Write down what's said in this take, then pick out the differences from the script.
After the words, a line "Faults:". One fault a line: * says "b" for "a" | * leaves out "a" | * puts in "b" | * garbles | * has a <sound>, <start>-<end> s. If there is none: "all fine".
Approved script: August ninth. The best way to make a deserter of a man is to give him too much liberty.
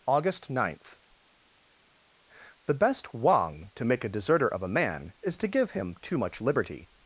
August ninth. The best wang to make a deserter of a man is to give him too much liberty.
Faults:
* says "wang" for "way"